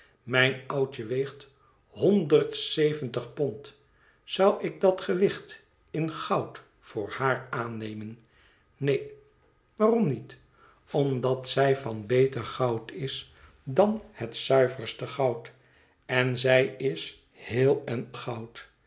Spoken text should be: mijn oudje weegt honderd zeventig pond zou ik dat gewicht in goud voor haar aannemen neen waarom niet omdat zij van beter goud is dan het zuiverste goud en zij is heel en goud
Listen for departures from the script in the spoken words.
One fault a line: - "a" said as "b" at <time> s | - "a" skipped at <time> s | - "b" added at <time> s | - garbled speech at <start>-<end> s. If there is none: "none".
none